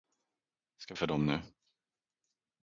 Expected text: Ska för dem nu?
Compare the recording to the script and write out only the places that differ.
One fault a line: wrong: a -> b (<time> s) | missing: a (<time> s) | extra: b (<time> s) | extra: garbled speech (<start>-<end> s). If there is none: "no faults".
no faults